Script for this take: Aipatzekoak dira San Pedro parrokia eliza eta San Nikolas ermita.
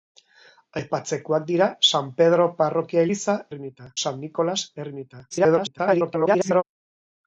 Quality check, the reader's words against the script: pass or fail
fail